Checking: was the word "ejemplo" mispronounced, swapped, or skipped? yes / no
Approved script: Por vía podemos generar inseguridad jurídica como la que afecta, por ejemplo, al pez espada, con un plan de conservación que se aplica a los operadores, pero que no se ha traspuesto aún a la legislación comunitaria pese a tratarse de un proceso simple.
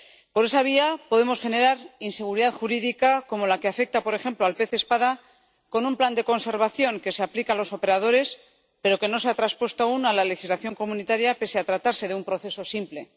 no